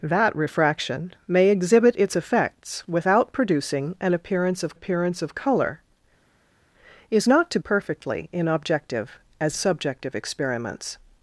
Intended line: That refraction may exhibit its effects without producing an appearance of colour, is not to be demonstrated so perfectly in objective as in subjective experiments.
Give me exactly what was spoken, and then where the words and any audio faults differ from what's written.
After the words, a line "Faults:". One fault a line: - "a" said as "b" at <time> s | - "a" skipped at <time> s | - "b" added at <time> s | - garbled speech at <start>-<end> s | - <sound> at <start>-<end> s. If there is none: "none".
That refraction may exhibit its effects without producing an appearance of appearance of colour, is not to perfectly in objective as subjective experiments.
Faults:
- "appearance of" added at 4.7 s
- "be demonstrated so" skipped at 7.6 s
- "in" skipped at 9.6 s